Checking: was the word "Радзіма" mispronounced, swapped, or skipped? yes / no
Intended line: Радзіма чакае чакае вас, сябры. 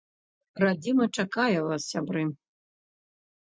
no